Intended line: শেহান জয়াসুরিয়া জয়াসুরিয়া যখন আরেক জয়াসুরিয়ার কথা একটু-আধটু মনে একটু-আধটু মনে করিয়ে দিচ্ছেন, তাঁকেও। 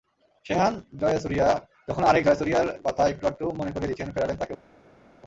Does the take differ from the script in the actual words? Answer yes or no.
yes